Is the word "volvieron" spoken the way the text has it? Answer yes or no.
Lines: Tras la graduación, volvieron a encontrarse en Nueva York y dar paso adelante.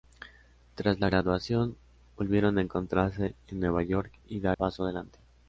yes